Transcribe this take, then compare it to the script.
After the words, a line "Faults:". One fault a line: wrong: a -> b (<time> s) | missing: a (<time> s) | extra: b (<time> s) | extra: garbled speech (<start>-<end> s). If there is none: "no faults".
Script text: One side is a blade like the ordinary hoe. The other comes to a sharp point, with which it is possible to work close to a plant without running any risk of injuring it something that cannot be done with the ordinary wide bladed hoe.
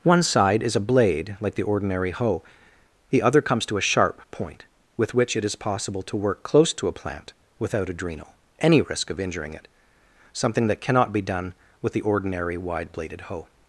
One side is a blade like the ordinary hoe. The other comes to a sharp point, with which it is possible to work close to a plant without adrenal any risk of injuring it something that cannot be done with the ordinary wide bladed hoe.
Faults:
wrong: running -> adrenal (7.9 s)